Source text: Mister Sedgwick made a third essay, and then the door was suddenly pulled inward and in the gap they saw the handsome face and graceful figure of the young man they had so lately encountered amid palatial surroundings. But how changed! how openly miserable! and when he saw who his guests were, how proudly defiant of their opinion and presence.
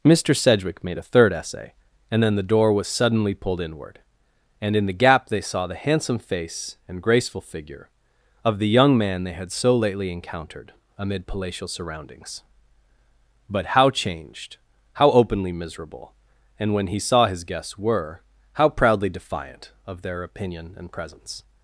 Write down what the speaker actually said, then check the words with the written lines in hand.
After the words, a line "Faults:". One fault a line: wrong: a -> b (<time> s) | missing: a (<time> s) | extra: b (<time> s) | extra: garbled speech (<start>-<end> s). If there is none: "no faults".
Mister Sedgwick made a third essay, and then the door was suddenly pulled inward and in the gap they saw the handsome face and graceful figure of the young man they had so lately encountered amid palatial surroundings. But how changed! how openly miserable! and when he saw his guests were, how proudly defiant of their opinion and presence.
Faults:
missing: who (17.3 s)